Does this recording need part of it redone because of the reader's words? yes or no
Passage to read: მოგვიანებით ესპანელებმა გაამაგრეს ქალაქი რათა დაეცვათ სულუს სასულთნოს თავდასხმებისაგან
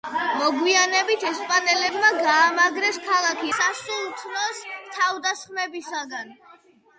yes